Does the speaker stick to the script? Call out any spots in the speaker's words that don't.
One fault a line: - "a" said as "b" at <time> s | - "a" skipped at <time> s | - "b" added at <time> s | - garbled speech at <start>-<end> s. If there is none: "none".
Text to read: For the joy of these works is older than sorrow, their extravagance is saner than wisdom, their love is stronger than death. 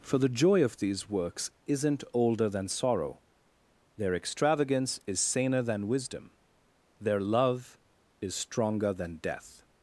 - "is" said as "isn't" at 1.6 s